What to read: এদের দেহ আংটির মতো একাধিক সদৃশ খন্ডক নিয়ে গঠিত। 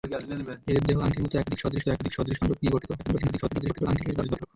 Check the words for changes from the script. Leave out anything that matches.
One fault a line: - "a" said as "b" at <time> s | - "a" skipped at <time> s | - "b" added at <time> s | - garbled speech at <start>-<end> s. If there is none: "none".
- "একাধিক সদৃশ" added at 1.9 s
- garbled speech at 3.0-4.5 s